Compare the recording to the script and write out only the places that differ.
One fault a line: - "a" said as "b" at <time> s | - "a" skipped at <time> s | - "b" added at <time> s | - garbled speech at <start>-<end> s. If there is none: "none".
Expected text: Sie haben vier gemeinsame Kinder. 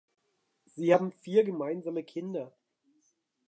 none